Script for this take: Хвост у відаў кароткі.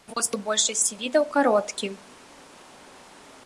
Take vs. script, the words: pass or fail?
fail